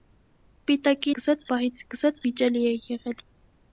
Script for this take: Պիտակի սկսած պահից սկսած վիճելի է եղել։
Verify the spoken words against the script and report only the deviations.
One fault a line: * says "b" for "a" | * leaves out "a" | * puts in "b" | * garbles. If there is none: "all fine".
all fine